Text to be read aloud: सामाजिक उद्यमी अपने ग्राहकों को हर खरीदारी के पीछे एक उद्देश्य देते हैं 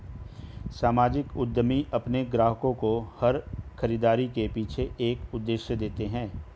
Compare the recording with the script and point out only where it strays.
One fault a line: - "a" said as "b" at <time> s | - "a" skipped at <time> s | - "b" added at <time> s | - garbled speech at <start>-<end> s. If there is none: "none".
none